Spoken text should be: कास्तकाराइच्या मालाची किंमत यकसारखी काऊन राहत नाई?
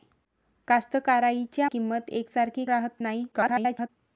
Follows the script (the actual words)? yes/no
no